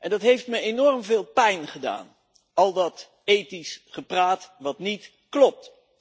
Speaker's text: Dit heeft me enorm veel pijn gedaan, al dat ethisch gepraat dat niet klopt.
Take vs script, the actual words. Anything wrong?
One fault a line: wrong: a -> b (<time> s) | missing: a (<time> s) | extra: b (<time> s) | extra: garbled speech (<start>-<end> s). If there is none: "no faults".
wrong: Dit -> Dat (0.1 s)